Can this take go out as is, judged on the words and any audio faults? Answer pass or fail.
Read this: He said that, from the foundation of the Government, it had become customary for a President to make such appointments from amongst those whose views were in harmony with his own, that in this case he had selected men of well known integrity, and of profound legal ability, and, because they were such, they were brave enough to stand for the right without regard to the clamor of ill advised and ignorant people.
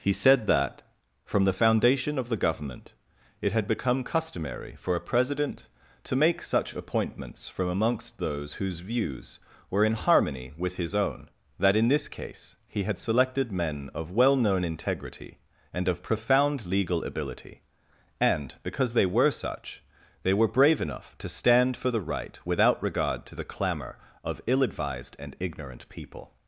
pass